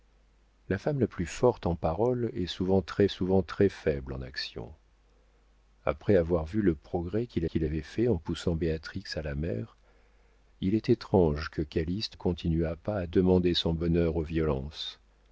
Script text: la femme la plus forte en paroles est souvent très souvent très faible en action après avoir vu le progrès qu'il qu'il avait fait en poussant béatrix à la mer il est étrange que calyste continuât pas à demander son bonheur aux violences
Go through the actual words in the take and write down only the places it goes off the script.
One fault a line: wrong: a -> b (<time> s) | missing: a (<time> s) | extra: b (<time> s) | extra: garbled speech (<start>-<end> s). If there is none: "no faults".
no faults